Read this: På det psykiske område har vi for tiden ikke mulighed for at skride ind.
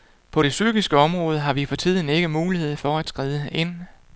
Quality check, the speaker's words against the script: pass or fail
pass